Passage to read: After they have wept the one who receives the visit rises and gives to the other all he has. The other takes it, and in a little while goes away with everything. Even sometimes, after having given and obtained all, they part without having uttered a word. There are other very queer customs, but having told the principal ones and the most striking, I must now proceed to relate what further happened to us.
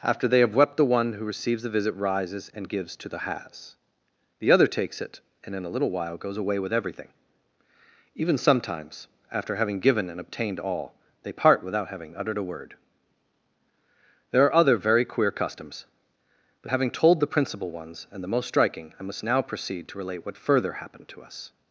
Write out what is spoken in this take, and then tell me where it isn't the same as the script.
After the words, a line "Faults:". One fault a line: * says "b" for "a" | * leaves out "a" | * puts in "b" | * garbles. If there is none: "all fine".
After they have wept the one who receives the visit rises and gives to the has. The other takes it, and in a little while goes away with everything. Even sometimes, after having given and obtained all, they part without having uttered a word. There are other very queer customs, but having told the principal ones and the most striking, I must now proceed to relate what further happened to us.
Faults:
* leaves out "other all he"